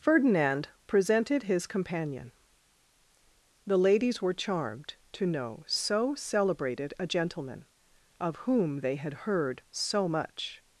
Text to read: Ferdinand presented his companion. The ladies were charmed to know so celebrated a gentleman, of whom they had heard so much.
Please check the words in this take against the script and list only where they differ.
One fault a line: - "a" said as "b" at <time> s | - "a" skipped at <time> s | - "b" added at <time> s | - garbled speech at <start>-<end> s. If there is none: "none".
none